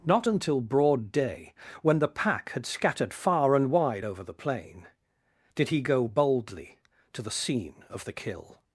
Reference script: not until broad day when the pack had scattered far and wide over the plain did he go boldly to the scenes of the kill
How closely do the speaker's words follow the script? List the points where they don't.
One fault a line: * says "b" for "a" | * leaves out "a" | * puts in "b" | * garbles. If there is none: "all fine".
* says "scene" for "scenes"